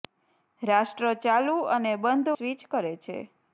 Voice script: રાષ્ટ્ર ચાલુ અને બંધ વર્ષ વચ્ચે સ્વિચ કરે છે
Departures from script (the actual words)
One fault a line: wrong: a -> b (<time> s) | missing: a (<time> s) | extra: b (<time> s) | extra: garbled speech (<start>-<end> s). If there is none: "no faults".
missing: વર્ષ વચ્ચે (2.3 s)